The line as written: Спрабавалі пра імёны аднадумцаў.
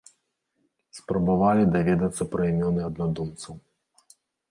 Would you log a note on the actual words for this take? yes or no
yes